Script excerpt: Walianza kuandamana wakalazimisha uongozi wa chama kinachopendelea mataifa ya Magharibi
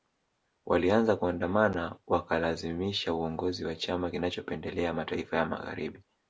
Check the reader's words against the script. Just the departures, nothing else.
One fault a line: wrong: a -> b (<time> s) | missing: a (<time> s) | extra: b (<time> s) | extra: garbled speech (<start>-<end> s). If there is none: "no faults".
no faults